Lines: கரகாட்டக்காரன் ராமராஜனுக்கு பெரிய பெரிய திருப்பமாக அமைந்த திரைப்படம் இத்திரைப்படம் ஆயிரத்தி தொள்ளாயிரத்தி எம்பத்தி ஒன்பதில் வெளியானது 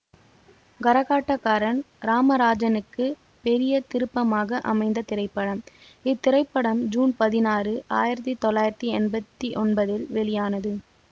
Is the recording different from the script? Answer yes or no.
yes